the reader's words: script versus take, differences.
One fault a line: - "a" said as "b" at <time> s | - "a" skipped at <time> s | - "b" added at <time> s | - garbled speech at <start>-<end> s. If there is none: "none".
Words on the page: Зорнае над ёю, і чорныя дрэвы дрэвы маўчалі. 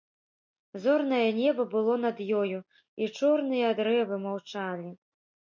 - "неба было" added at 1.4 s
- "дрэвы" skipped at 4.2 s